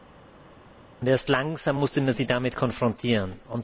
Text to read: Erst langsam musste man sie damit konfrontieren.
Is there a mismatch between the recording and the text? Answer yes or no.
no